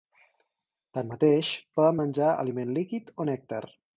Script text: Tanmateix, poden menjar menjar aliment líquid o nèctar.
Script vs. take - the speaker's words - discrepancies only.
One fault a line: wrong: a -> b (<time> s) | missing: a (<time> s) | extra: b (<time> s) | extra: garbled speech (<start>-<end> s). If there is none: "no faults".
missing: menjar (2.3 s)